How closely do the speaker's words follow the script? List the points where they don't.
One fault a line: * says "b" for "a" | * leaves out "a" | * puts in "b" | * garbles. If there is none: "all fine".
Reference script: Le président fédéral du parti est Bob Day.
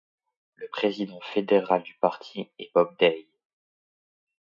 all fine